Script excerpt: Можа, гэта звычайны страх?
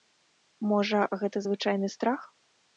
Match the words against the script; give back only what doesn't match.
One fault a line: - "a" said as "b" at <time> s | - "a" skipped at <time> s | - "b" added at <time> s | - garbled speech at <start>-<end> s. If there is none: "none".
none